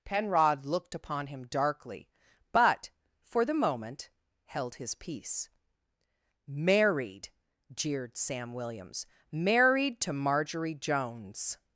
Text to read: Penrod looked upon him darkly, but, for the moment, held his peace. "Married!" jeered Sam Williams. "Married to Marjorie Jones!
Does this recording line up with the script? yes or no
yes